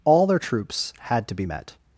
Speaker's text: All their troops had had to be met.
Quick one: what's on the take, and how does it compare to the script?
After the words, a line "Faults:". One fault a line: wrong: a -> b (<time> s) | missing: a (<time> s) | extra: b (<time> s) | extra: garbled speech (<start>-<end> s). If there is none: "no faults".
All their troops had to be met.
Faults:
missing: had (1.3 s)